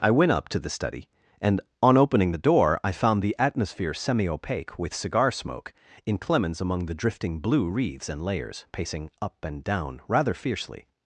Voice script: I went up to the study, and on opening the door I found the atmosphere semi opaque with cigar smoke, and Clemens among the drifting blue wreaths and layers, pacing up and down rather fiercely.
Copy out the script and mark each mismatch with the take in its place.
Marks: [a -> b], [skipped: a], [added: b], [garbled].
I went up to the study, and on opening the door I found the atmosphere semi opaque with cigar smoke, [and -> in] Clemens among the drifting blue wreaths and layers, pacing up and down rather fiercely.